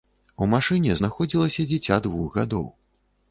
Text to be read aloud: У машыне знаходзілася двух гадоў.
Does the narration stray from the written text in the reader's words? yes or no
yes